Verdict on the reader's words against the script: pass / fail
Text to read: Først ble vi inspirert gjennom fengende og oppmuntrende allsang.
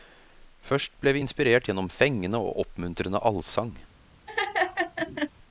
pass